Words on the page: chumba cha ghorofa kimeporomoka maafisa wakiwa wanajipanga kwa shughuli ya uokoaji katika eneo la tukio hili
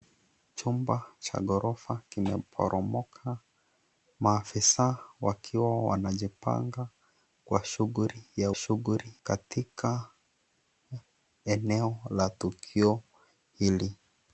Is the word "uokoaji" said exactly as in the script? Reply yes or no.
no